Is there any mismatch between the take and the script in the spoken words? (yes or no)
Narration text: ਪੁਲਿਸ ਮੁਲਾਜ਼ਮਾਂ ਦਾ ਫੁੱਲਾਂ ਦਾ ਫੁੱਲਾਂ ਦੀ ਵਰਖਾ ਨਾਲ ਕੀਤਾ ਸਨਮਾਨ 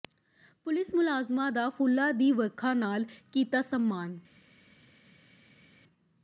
yes